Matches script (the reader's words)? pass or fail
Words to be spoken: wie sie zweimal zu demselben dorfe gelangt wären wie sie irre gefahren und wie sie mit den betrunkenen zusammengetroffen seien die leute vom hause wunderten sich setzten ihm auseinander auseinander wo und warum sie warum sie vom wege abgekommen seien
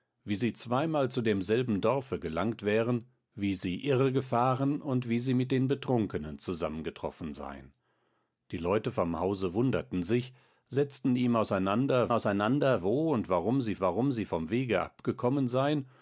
pass